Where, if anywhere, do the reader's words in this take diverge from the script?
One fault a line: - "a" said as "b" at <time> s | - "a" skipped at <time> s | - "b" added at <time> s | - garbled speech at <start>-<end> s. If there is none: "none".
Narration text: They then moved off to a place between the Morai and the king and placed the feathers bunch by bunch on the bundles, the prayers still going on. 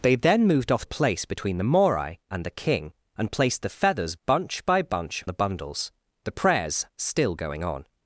- "to" skipped at 0.8 s
- "on" skipped at 5.2 s